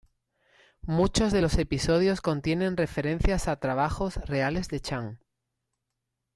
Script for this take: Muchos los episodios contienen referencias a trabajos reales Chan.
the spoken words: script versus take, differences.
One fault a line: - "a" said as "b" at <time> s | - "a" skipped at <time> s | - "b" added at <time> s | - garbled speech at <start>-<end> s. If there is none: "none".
- "de" added at 1.3 s
- "de" added at 4.7 s